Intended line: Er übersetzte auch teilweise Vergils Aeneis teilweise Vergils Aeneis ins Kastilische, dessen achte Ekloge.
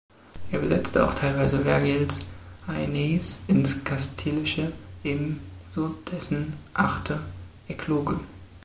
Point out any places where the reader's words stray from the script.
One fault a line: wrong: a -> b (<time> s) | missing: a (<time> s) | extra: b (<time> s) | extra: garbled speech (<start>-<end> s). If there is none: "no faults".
missing: teilweise Vergils Aeneis (3.4 s)
extra: ebenso (5.0 s)